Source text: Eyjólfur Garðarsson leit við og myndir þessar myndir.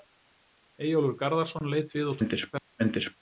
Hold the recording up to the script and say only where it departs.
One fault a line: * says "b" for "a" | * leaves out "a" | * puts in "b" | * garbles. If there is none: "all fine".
all fine